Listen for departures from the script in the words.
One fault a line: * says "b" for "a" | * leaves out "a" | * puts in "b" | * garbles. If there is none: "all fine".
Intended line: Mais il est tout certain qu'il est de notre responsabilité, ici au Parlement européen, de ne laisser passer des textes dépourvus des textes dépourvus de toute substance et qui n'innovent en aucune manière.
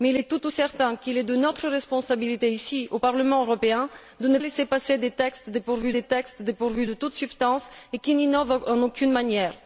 all fine